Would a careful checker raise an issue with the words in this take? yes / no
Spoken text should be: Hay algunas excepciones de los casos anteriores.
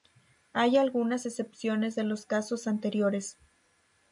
no